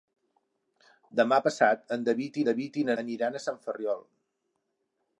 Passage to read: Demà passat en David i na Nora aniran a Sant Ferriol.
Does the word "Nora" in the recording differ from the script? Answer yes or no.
yes